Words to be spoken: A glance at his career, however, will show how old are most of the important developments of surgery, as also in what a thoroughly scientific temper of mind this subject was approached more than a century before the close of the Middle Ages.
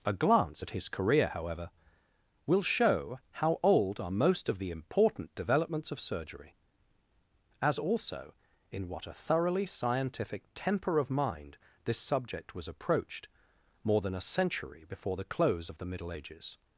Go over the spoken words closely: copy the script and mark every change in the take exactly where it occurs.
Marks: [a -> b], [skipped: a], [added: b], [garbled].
A glance at his career, however, will show how old are most of the important developments of surgery, as also in what a thoroughly scientific temper of mind this subject was approached more than a century before the close of the Middle Ages.